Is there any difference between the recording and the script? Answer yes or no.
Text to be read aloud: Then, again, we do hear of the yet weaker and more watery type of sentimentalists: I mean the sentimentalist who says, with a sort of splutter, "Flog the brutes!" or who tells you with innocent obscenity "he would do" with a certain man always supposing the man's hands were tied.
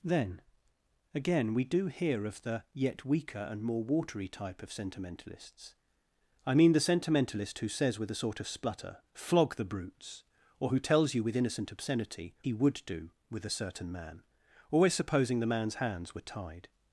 no